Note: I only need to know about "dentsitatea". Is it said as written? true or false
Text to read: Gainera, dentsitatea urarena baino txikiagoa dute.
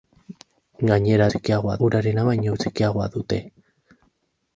false